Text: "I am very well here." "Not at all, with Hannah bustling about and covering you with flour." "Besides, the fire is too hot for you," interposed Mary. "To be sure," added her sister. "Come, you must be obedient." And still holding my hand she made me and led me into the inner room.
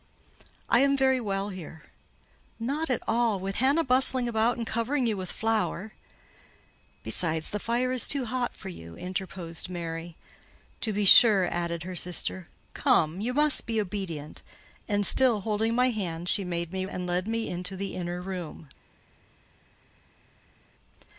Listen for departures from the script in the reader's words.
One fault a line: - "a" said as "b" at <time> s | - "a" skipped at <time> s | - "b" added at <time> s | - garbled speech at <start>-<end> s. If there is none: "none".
none